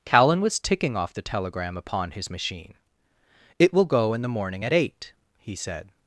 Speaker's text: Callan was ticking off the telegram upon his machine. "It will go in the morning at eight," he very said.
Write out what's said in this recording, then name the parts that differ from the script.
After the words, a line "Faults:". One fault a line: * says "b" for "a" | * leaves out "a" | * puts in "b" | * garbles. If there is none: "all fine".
Callan was ticking off the telegram upon his machine. "It will go in the morning at eight," he said.
Faults:
* leaves out "very"